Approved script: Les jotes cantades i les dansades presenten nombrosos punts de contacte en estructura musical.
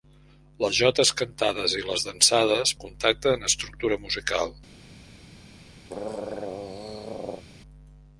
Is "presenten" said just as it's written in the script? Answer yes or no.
no